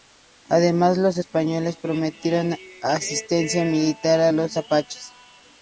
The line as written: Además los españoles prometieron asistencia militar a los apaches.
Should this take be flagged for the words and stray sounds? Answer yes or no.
no